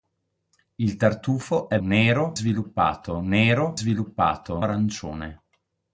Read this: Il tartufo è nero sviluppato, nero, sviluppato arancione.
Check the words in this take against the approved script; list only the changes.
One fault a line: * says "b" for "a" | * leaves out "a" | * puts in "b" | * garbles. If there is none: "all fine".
all fine